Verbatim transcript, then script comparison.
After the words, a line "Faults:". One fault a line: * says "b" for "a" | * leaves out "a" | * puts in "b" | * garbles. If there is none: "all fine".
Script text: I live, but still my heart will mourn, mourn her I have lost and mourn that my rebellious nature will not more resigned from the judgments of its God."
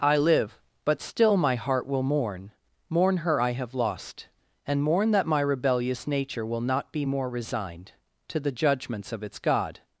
I live, but still my heart will mourn, mourn her I have lost and mourn that my rebellious nature will not be more resigned to the judgments of its God."
Faults:
* puts in "be"
* says "to" for "from"